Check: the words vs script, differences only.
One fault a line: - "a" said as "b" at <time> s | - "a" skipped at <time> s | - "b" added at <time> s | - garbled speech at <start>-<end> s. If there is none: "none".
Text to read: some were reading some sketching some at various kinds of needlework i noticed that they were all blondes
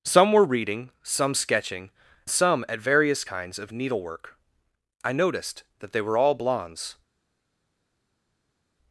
none